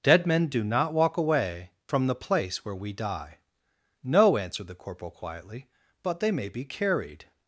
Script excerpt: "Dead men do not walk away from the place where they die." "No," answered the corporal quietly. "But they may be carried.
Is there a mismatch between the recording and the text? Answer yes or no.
yes